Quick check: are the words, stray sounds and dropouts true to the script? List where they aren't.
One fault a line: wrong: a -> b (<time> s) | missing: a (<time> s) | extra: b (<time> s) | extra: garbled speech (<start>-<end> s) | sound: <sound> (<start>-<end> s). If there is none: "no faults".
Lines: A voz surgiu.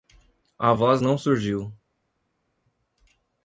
extra: não (1.0 s)